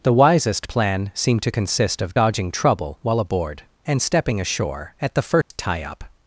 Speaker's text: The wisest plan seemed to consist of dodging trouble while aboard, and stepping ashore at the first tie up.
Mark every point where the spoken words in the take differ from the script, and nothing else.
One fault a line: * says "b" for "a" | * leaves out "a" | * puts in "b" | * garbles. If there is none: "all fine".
all fine